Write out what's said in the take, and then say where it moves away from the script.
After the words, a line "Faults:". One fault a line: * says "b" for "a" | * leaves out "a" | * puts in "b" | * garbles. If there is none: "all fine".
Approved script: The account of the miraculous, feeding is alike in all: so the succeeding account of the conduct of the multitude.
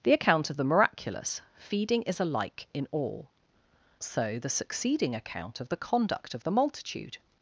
The account of the miraculous, feeding is alike in all: so the succeeding account of the conduct of the multitude.
Faults:
all fine